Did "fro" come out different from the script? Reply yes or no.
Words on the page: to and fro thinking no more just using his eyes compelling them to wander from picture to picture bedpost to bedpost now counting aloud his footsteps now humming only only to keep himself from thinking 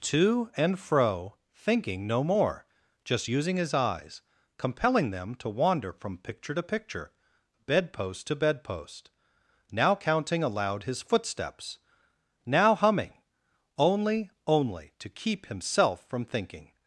no